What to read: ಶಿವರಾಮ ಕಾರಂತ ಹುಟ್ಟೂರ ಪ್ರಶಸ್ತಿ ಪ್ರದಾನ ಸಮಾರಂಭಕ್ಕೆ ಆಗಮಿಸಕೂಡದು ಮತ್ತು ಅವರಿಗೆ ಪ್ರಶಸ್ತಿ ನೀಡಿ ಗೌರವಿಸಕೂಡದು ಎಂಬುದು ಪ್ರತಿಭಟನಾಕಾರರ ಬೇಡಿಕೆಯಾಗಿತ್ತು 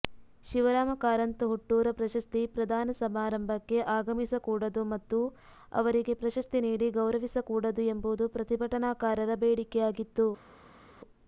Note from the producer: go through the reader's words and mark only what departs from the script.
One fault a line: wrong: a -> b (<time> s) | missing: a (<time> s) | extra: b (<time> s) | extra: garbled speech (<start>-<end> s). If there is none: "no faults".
no faults